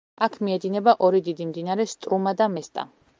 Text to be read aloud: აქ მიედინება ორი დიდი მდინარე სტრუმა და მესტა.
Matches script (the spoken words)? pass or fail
pass